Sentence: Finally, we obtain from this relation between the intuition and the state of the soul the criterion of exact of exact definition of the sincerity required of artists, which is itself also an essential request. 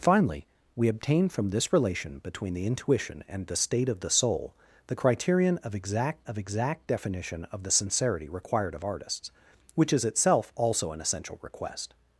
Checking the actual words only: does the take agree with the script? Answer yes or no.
yes